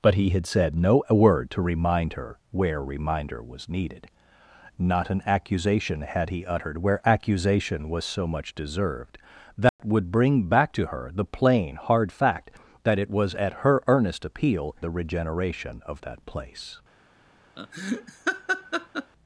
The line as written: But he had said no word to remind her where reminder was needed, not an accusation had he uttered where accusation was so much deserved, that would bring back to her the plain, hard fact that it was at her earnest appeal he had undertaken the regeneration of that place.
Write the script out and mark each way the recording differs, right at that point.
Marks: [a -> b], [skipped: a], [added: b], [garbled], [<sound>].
But he had said no word to remind her where reminder was needed, not an accusation had he uttered where accusation was so much deserved, that [dropout] would bring back to her the plain, hard fact that it was at her earnest appeal [skipped: he had undertaken] the regeneration of that place. [laugh]